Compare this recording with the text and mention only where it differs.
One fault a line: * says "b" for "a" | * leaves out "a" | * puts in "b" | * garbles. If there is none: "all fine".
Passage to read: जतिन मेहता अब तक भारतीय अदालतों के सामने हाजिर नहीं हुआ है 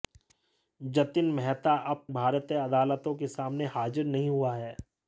* leaves out "तक"